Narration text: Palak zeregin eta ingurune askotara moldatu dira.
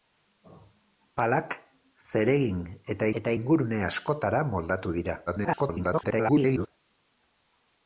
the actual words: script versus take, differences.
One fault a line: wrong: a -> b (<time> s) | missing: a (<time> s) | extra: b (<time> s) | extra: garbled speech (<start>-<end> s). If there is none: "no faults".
extra: eta (3.2 s)
extra: garbled speech (5.3-6.7 s)